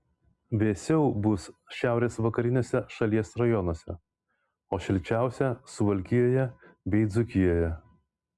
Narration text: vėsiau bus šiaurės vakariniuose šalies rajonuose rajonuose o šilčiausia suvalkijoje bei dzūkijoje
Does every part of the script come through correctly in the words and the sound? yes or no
no